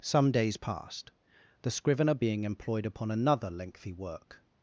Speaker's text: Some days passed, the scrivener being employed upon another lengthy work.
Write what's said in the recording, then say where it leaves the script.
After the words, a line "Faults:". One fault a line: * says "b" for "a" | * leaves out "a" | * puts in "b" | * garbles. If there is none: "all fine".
Some days passed, the scrivener being employed upon another lengthy work.
Faults:
all fine